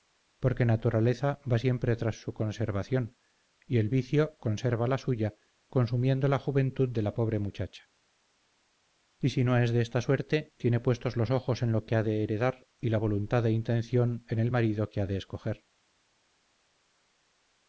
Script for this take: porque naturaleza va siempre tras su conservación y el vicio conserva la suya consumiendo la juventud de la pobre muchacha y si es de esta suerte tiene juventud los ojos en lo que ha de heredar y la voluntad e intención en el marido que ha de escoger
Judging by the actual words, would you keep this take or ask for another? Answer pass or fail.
fail